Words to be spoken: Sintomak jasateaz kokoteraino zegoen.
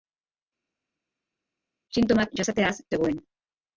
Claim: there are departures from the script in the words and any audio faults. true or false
true